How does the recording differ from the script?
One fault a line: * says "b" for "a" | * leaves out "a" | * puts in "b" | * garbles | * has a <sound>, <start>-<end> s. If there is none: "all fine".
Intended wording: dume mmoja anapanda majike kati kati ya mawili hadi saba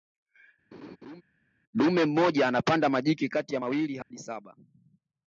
* has a laugh, 0.7-1.2 s
* leaves out "kati"
* has a dropout, 4.0-4.1 s